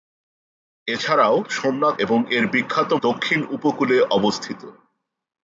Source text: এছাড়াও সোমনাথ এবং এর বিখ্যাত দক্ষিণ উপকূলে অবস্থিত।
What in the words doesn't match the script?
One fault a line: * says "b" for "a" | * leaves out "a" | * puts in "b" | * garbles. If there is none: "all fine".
all fine